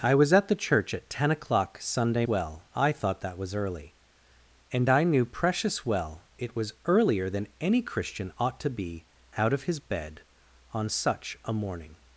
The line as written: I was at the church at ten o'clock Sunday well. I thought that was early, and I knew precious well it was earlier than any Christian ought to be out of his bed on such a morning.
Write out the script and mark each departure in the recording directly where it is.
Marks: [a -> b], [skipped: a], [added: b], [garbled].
I was at the church at ten o'clock Sunday well. I thought that was early, and I knew precious well it was earlier than any Christian ought to be out of his bed on such a morning.